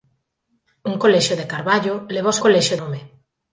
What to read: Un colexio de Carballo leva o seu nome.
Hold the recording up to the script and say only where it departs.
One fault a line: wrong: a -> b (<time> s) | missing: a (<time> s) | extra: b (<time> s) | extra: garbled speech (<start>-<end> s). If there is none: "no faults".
wrong: seu -> colexio (2.4 s)